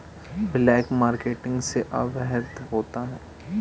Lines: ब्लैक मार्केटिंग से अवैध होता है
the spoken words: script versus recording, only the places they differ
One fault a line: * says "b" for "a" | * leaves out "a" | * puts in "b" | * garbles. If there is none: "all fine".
all fine